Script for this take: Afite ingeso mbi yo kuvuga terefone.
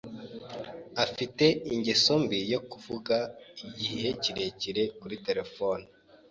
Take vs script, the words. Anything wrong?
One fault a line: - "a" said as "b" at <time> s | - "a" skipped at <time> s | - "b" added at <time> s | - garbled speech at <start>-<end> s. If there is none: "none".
- "igihe kirekire kuri" added at 3.7 s